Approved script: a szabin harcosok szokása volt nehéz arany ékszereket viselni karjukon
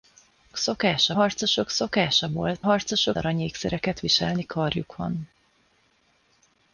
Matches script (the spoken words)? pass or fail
fail